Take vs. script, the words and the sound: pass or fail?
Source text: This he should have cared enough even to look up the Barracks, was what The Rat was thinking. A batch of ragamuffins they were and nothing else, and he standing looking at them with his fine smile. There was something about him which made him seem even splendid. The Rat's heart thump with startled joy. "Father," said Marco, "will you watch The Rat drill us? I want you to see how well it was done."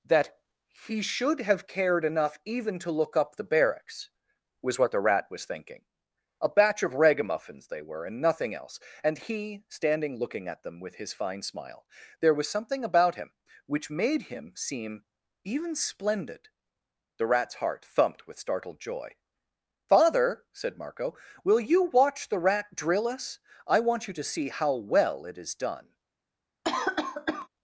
fail